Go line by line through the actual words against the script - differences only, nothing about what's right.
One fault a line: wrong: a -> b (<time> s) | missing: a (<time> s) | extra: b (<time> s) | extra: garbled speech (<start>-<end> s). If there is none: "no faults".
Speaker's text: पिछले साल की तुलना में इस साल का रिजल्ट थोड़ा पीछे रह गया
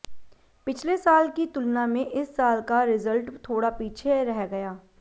no faults